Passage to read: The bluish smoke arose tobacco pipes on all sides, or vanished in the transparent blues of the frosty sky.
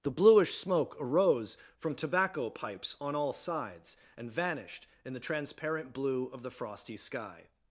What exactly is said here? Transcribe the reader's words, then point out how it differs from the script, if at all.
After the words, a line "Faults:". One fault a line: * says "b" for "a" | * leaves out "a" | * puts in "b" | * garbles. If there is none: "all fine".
The bluish smoke arose from tobacco pipes on all sides, and vanished in the transparent blue of the frosty sky.
Faults:
* puts in "from"
* says "and" for "or"
* says "blue" for "blues"